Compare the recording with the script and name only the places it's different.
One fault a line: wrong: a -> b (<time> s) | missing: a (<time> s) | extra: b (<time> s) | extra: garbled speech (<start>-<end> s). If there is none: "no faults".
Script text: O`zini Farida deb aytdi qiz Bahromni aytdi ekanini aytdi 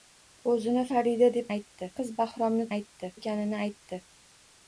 no faults